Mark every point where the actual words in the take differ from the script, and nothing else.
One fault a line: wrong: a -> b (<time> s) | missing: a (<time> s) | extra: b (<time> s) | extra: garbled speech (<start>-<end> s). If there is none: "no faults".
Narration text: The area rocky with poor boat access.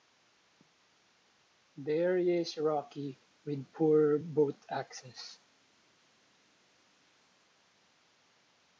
extra: is (2.4 s)